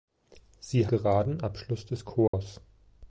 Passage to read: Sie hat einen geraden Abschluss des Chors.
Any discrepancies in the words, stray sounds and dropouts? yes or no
yes